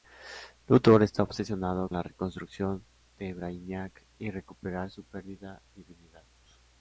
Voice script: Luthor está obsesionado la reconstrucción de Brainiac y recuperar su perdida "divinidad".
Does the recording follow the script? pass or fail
pass